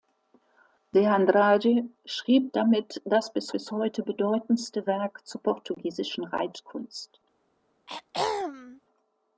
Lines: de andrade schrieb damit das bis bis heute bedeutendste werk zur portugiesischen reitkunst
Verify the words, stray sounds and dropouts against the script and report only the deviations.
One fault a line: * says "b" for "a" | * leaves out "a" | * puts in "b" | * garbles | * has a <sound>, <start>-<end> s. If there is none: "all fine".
* has a throat clearing, 7.9-8.8 s